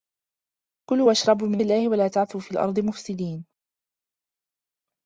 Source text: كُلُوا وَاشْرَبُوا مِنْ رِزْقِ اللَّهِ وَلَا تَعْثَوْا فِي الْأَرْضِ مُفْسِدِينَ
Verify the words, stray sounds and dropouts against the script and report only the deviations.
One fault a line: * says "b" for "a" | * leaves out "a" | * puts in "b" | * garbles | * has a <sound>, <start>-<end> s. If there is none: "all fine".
* leaves out "رِزْقِ"